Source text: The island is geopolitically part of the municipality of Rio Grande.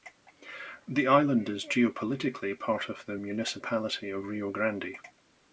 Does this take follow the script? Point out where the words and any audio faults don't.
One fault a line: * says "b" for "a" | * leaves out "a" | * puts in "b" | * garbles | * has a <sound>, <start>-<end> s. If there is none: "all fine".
all fine